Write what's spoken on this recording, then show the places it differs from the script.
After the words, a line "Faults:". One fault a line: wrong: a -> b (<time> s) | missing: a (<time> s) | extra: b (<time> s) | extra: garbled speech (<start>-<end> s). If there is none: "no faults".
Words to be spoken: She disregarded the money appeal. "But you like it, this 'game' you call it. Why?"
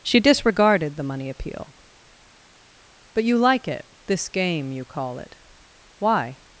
She disregarded the money appeal. "But you like it, this 'game' you call it. Why?"
Faults:
no faults